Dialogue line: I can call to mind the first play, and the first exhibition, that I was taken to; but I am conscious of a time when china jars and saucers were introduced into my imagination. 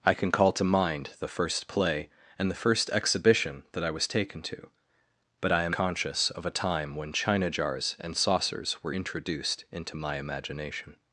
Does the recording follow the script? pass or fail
pass